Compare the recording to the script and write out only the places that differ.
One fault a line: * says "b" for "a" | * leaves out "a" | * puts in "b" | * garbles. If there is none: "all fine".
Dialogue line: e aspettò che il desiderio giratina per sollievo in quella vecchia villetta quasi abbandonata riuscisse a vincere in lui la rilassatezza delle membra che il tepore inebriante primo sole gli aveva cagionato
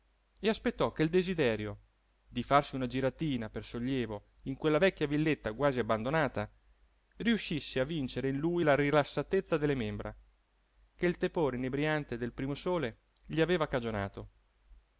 * puts in "di farsi una"
* puts in "del"